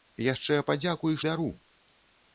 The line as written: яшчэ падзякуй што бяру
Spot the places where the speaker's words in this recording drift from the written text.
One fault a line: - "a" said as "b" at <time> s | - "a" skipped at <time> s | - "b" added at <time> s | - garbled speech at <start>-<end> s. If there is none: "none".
- "што" skipped at 1.2 s